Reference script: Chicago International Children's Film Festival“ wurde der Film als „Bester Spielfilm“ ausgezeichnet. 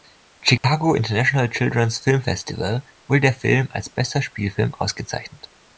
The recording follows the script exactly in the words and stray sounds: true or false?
false